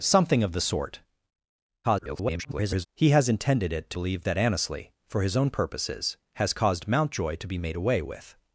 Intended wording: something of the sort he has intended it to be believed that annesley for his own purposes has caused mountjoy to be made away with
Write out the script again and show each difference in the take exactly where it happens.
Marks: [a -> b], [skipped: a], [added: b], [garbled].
something of the sort [garbled] he has intended it to [skipped: be] believed that annesley for his own purposes has caused mountjoy to be made away with